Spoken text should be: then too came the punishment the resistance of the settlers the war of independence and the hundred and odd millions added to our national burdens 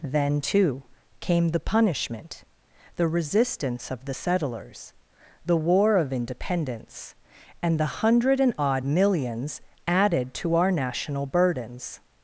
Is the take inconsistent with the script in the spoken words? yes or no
no